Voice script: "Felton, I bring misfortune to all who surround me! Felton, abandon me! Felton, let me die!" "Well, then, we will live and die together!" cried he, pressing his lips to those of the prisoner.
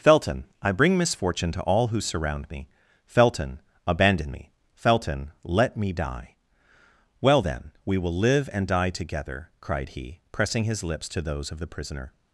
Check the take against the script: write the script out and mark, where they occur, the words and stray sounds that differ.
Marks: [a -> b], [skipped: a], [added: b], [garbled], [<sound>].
"Felton, I bring misfortune to all who surround me! Felton, abandon me! Felton, let me die!" "Well, then, we will live and die together!" cried he, pressing his lips to those of the prisoner.